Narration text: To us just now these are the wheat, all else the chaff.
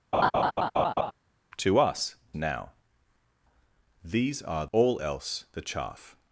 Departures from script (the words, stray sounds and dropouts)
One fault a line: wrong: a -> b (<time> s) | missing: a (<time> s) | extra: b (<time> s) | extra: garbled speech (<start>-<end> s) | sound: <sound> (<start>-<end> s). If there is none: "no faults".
sound: laugh (0.1-1.1 s)
missing: just (2.1 s)
missing: the wheat (4.7 s)